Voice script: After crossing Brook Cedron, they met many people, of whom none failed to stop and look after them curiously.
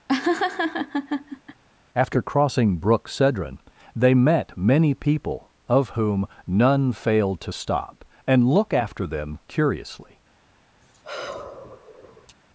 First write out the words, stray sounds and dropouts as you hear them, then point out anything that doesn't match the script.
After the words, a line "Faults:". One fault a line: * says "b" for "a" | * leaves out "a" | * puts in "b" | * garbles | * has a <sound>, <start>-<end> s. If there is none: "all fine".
After crossing Brook Cedron, they met many people, of whom none failed to stop and look after them curiously.
Faults:
* has a laugh, 0.1-1.6 s
* has a sigh, 10.8-12.4 s